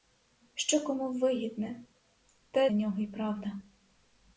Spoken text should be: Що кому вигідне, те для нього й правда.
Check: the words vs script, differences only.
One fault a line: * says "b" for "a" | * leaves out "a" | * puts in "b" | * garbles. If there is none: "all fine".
* leaves out "для"